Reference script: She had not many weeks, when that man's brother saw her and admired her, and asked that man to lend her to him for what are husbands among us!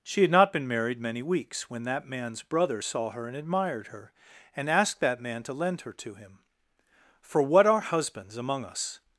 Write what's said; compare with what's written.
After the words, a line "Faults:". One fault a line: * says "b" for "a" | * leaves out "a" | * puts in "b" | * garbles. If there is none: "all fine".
She had not been married many weeks, when that man's brother saw her and admired her, and asked that man to lend her to him for what are husbands among us!
Faults:
* puts in "been married"